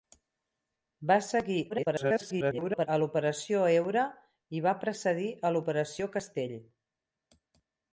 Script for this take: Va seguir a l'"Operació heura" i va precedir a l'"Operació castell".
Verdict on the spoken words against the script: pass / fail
fail